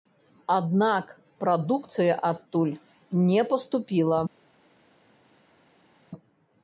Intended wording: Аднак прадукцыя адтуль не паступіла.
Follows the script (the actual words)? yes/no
yes